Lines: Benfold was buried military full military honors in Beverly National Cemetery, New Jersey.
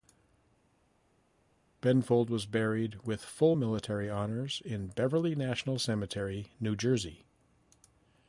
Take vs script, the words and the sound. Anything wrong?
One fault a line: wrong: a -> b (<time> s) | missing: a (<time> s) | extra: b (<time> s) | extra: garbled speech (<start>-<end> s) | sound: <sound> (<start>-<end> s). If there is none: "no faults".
wrong: military -> with (3.0 s)